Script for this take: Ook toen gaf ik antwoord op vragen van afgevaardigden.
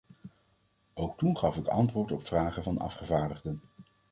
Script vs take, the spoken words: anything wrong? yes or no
no